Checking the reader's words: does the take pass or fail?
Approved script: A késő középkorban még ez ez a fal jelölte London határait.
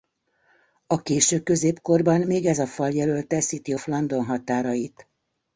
fail